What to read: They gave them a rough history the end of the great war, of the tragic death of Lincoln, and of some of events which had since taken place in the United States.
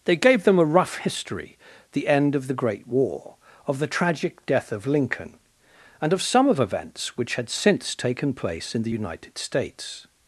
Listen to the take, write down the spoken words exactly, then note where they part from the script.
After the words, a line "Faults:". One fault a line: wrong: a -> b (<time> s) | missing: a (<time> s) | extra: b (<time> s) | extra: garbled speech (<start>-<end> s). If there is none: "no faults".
They gave them a rough history the end of the great war, of the tragic death of Lincoln, and of some of events which had since taken place in the United States.
Faults:
no faults